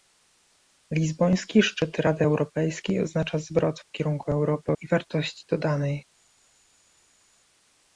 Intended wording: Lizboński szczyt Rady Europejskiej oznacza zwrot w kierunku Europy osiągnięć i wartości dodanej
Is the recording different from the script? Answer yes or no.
yes